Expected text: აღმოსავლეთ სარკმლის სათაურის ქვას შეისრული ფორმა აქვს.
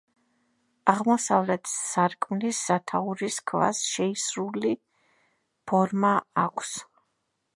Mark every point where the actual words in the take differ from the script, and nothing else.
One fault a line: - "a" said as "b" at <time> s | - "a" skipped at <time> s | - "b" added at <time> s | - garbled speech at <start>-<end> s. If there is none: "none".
none